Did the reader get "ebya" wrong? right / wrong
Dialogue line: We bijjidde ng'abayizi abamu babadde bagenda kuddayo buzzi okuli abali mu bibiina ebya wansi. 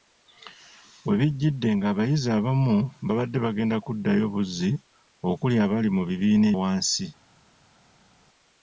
wrong